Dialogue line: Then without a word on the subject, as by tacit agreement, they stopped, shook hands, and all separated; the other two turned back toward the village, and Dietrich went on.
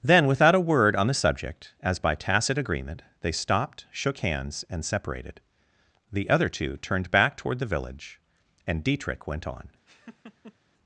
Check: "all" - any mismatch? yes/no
yes